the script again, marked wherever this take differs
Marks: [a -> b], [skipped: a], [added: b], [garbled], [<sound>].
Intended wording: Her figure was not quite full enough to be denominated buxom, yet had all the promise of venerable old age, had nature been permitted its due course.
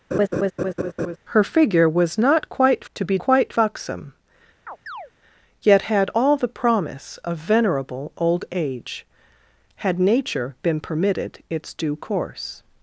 [laugh] Her figure was not quite [skipped: full enough] to be [denominated -> quite] buxom, [chirp] yet had all the promise of venerable old age, had nature been permitted its due course.